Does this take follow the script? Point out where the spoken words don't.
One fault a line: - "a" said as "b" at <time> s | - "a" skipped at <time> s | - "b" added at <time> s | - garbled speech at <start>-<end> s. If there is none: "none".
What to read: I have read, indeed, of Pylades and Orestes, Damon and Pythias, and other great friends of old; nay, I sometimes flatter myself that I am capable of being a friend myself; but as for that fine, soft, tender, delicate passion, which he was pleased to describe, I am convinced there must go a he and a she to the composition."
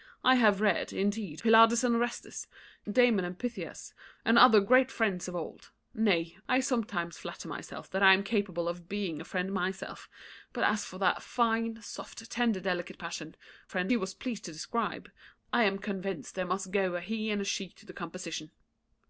- "of" skipped at 1.4 s
- "which" said as "friend" at 13.7 s